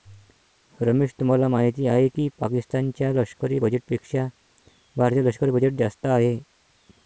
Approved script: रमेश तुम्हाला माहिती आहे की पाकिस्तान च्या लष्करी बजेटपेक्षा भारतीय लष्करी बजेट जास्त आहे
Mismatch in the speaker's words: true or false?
false